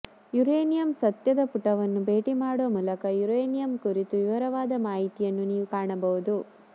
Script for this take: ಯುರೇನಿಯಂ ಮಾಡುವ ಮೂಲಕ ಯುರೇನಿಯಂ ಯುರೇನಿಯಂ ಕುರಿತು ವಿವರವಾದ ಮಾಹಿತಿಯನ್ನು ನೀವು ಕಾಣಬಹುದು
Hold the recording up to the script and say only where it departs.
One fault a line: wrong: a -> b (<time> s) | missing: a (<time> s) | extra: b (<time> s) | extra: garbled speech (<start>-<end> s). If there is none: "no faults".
extra: ಸತ್ಯದ ಪುಟವನ್ನು ಭೇಟಿ (1.0 s)
missing: ಯುರೇನಿಯಂ (3.7 s)